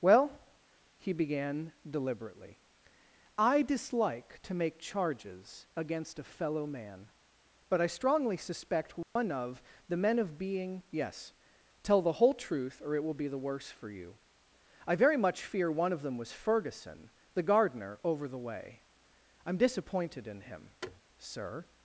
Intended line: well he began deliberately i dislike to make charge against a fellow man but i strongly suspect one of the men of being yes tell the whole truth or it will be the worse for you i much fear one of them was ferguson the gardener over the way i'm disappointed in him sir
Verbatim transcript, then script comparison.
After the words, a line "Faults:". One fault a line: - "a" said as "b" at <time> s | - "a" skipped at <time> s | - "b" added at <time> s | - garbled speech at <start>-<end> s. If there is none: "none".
well he began deliberately i dislike to make charges against a fellow man but i strongly suspect one of the men of being yes tell the whole truth or it will be the worse for you i very much fear one of them was ferguson the gardener over the way i'm disappointed in him sir
Faults:
- "charge" said as "charges" at 4.8 s
- "very" added at 14.9 s